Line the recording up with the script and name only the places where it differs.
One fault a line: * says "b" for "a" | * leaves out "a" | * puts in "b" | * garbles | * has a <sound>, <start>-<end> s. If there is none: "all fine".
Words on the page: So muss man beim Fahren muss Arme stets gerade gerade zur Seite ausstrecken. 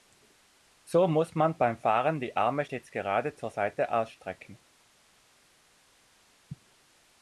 * says "die" for "muss"
* leaves out "gerade"